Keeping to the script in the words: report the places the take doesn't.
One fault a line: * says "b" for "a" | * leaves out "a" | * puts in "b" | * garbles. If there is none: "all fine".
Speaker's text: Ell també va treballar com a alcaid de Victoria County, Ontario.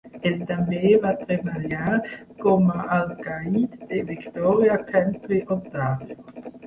all fine